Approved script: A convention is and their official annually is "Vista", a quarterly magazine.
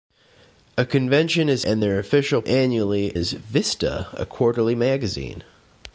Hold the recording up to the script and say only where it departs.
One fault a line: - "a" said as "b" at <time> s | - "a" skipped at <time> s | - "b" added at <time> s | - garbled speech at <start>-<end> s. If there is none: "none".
none